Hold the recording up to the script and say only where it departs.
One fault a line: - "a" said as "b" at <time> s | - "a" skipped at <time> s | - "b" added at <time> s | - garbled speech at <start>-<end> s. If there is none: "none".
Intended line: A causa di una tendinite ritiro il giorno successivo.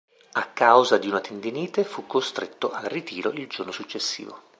- "fu costretto al" added at 1.8 s